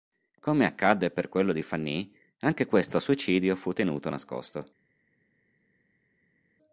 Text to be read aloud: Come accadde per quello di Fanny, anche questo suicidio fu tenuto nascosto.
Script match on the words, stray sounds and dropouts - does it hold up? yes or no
yes